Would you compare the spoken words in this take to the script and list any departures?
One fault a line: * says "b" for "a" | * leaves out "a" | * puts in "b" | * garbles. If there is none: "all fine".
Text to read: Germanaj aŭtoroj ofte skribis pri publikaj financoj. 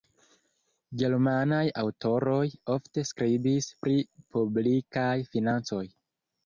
all fine